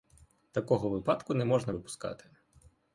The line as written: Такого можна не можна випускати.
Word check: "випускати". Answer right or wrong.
right